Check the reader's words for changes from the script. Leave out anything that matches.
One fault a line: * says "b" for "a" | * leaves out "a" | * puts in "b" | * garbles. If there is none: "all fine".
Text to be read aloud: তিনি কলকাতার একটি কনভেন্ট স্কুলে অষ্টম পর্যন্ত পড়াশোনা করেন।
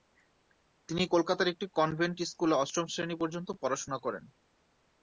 * puts in "শ্রেণী"